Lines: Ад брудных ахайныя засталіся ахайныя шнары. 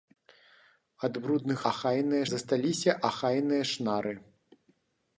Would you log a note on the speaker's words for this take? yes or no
no